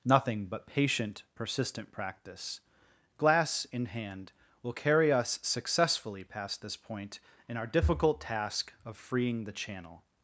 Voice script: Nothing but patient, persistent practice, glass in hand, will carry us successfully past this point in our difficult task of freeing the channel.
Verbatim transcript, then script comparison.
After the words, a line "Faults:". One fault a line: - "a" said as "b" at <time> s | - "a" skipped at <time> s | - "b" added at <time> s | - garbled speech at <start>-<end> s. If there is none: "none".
Nothing but patient, persistent practice, glass in hand, will carry us successfully past this point in our difficult task of freeing the channel.
Faults:
none